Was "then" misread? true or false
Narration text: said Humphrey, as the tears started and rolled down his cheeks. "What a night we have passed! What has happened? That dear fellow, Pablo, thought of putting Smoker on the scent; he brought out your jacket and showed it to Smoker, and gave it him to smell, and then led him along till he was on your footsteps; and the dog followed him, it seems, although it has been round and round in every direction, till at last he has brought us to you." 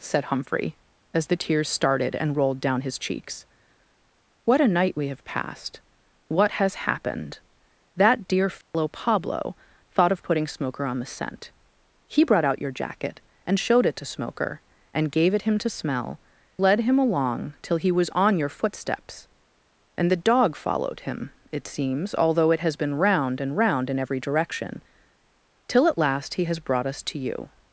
true